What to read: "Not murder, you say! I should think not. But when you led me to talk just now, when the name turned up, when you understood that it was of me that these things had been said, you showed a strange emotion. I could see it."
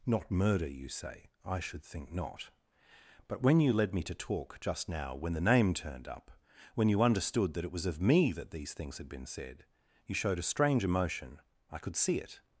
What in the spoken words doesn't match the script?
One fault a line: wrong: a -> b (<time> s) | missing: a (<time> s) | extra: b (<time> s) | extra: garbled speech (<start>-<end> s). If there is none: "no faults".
no faults